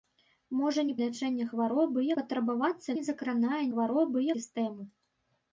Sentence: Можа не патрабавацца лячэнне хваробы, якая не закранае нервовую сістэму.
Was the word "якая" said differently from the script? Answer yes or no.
yes